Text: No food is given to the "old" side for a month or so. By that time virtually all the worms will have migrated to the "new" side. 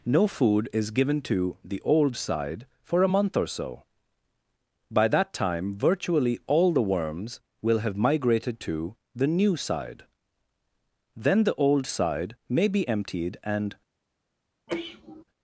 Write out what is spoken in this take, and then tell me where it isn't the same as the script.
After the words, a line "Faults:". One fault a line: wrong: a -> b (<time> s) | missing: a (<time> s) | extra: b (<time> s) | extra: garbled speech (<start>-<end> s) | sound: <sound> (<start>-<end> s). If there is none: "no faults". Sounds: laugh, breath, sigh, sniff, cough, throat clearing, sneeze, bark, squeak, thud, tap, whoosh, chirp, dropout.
No food is given to the "old" side for a month or so. By that time virtually all the worms will have migrated to the "new" side. Then the "old" side may be emptied and
Faults:
extra: Then the old side may be emptied and (11.2 s)
sound: sneeze (14.7-15.2 s)